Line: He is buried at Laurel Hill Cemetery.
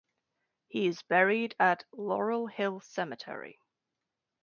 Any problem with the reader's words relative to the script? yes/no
no